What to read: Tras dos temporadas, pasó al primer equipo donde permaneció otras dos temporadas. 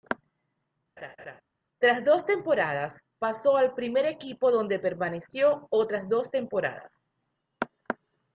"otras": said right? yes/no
yes